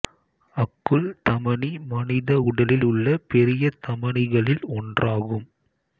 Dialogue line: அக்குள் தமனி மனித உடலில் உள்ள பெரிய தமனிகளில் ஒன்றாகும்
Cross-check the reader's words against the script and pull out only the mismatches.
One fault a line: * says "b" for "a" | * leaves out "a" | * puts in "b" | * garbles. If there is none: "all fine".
all fine